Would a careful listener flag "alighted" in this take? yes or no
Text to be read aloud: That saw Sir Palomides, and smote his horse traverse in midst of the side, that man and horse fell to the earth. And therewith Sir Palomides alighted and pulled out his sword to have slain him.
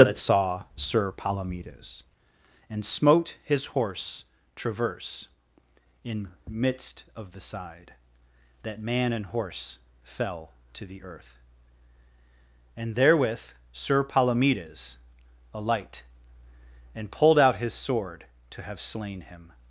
yes